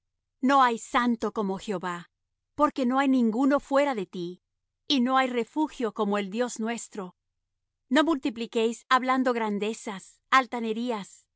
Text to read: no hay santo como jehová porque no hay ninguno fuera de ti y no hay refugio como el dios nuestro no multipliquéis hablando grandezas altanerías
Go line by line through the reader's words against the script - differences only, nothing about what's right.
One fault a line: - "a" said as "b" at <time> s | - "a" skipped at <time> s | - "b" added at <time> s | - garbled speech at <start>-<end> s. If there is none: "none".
none